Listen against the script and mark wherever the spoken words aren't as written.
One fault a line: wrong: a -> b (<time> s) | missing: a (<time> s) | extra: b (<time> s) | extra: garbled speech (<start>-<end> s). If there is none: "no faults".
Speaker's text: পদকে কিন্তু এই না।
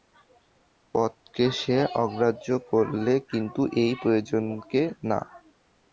extra: সে অগ্রাহ্য করলে (1.6 s)
extra: প্রয়োজনকে (4.0 s)